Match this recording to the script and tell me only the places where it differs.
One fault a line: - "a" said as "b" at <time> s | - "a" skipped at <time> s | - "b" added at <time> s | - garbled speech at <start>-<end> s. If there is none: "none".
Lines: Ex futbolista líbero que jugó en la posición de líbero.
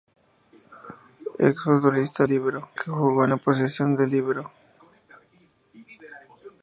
none